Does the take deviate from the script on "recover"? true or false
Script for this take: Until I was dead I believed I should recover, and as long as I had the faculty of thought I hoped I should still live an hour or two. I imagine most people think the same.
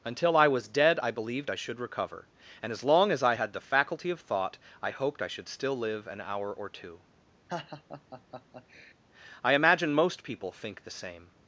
false